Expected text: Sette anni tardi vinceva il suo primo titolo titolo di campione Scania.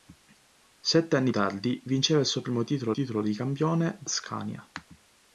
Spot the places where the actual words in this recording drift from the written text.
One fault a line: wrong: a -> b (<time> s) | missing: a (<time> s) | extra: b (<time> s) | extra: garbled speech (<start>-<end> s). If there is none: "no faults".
no faults